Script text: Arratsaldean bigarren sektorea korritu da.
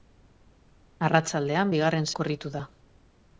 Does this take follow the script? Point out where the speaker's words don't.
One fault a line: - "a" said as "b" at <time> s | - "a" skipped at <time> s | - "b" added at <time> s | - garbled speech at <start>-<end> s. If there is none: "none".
- "sektorea" skipped at 2.1 s